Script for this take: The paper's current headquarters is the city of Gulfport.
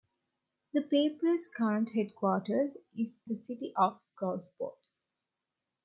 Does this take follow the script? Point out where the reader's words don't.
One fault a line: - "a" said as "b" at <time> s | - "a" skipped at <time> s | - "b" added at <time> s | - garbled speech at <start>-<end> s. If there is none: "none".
none